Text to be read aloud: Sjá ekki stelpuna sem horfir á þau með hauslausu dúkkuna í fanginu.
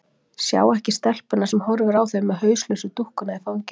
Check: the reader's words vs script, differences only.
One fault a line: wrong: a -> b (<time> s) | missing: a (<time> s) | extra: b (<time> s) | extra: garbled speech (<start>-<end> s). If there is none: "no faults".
no faults